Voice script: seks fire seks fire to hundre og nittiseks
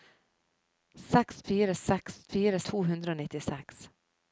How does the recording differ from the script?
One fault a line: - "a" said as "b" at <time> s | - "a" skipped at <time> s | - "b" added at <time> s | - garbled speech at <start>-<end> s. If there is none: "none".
none